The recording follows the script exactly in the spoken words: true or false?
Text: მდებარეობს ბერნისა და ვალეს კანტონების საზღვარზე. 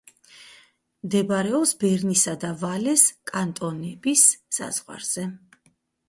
true